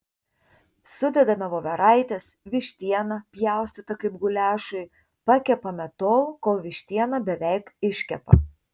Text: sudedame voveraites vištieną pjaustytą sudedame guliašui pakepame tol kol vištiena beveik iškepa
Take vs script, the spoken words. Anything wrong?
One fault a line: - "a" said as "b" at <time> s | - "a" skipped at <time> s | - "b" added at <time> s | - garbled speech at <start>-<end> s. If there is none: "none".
- "sudedame" said as "kaip" at 4.0 s